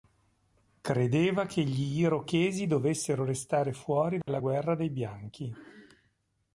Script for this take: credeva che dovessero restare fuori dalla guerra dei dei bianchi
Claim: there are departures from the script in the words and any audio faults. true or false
true